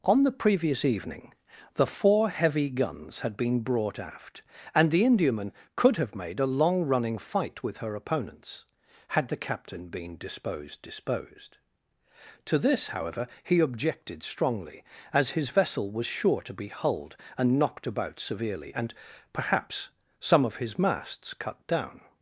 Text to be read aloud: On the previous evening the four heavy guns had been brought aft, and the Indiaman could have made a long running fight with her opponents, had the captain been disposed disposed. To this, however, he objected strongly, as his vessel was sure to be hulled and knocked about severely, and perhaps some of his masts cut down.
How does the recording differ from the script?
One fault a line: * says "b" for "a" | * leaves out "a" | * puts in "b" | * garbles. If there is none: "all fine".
all fine